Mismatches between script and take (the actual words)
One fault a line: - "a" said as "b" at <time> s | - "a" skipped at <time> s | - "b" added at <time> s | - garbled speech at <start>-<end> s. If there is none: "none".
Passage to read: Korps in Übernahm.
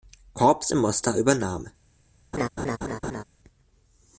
- "Mostar" added at 0.8 s